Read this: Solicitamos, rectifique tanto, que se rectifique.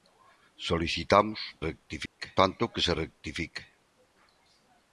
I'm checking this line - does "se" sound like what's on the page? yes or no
yes